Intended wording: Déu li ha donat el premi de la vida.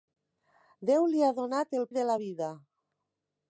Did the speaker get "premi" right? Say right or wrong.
wrong